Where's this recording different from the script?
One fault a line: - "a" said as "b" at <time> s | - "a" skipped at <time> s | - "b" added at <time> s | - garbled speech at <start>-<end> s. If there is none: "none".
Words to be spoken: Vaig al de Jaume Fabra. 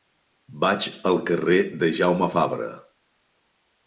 - "carrer" added at 1.3 s